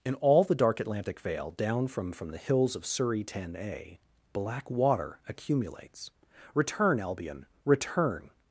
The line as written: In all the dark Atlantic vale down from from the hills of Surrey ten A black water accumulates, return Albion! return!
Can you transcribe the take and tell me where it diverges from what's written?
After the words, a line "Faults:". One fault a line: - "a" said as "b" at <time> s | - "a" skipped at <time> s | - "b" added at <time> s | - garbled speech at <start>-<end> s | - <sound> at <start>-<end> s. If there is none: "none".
In all the dark Atlantic vale down from from the hills of Surrey ten A black water accumulates, return Albion! return!
Faults:
none